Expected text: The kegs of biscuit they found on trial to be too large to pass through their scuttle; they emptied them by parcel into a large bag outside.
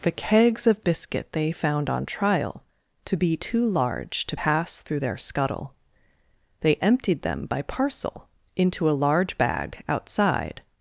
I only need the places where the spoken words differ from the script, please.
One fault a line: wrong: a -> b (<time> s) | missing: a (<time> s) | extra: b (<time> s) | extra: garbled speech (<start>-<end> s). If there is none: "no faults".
no faults